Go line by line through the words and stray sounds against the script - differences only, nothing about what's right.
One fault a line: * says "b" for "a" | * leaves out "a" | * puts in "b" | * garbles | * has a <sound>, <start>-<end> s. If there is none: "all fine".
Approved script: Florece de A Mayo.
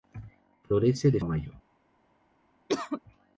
* has a cough, 2.7-3.0 s